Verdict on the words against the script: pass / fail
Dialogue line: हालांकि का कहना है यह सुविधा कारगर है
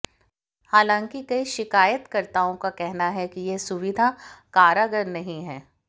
fail